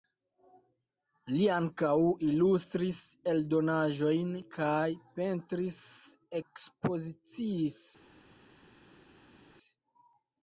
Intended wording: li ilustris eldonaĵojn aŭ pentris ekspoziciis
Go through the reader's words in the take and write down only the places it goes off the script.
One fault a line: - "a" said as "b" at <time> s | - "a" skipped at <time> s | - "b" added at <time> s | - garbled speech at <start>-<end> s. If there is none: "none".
- "ankaŭ" added at 1.6 s
- "aŭ" said as "kaj" at 4.6 s